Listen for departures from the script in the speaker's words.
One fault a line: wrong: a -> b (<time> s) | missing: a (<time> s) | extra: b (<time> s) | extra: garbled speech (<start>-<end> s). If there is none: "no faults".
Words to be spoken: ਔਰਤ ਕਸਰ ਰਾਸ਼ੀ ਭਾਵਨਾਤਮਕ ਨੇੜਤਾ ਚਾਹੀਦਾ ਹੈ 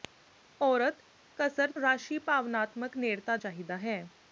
no faults